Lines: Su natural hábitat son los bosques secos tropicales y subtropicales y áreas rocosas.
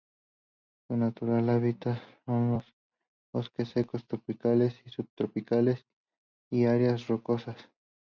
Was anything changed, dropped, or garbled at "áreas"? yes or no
no